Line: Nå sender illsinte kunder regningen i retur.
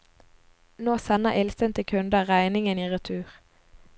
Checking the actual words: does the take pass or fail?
pass